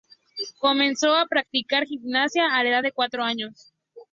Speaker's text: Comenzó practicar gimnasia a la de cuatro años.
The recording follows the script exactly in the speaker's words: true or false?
false